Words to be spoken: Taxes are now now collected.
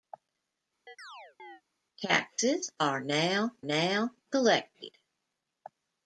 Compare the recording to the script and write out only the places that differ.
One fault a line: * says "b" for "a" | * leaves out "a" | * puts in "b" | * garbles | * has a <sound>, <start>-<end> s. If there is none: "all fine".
* has a chirp, 0.9-1.6 s